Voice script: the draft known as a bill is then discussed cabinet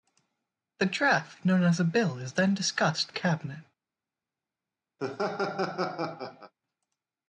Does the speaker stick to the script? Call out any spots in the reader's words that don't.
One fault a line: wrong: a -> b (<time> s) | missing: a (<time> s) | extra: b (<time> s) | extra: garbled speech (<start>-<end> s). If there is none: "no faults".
no faults